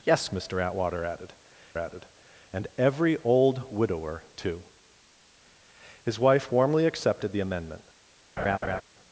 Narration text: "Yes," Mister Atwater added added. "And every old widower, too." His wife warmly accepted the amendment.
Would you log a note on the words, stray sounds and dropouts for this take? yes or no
yes